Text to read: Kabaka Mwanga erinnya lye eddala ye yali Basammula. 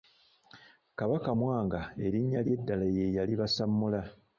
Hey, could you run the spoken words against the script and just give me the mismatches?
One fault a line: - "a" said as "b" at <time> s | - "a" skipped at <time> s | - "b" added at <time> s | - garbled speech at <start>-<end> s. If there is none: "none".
none